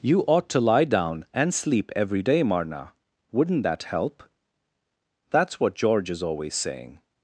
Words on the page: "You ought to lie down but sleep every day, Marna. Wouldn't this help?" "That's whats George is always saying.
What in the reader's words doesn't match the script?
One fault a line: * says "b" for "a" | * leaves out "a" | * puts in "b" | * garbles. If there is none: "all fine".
* says "and" for "but"
* says "that" for "this"
* says "what" for "whats"